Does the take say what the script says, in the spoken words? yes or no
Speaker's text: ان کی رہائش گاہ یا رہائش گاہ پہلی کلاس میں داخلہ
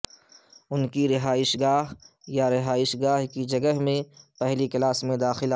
no